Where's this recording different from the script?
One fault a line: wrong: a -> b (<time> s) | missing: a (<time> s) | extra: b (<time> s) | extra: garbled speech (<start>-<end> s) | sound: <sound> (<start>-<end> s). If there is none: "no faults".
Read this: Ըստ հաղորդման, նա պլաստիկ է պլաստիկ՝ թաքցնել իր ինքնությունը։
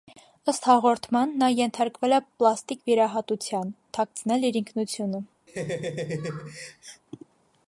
wrong: պլաստիկ -> ենթարկվել (1.6 s)
extra: վիրահատության (2.9 s)
sound: laugh (5.5-7.0 s)